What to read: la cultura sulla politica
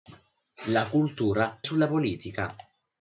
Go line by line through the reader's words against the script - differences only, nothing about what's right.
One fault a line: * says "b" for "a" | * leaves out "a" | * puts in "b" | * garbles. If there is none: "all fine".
all fine